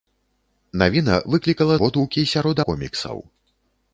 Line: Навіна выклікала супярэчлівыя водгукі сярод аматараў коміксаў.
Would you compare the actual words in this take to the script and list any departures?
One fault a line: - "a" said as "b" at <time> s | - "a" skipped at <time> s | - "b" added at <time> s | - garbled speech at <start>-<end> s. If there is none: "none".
- "супярэчлівыя" skipped at 1.8 s
- "аматараў" skipped at 2.6 s